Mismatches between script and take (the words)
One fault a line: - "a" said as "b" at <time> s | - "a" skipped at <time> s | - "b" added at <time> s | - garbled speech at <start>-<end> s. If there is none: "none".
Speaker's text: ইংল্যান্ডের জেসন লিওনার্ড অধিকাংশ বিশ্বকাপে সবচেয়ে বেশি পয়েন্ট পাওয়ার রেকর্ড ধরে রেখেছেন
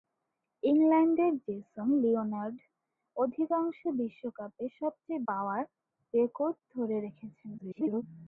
- "বেশি পয়েন্ট" skipped at 5.2 s
- garbled speech at 7.6-8.0 s